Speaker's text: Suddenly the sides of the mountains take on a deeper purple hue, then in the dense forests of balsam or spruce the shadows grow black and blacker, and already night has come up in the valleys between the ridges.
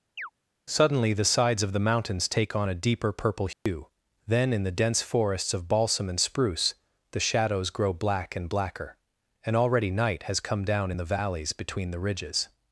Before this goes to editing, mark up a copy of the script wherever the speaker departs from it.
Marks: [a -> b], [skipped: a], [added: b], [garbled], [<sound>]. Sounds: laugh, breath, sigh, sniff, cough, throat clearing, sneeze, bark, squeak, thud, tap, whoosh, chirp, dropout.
[chirp] Suddenly the sides of the mountains take on a deeper purple hue, [dropout] then in the dense forests of balsam [or -> and] spruce the shadows grow black and blacker, and already night has come [up -> down] in the valleys between the ridges.